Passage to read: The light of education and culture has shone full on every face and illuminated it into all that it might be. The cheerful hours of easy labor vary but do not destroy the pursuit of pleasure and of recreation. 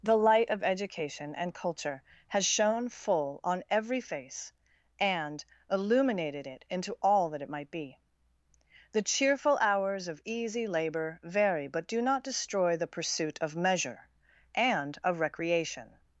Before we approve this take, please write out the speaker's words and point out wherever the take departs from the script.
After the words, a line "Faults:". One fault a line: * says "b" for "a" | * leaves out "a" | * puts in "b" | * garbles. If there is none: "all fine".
The light of education and culture has shone full on every face and illuminated it into all that it might be. The cheerful hours of easy labor vary but do not destroy the pursuit of measure and of recreation.
Faults:
* says "measure" for "pleasure"